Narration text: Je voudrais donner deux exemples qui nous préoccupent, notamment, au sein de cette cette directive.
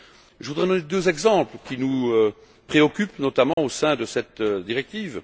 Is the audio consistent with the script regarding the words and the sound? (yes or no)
no